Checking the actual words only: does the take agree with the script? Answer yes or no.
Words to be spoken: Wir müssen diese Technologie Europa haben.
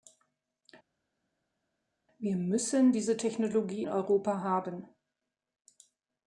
yes